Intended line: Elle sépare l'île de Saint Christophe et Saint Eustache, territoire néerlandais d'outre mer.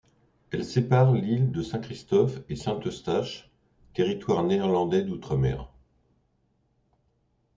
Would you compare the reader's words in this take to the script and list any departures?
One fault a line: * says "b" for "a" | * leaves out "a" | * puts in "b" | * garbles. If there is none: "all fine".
all fine